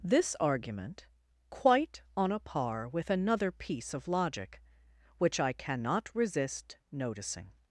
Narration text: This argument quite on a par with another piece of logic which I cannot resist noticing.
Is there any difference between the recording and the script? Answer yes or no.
no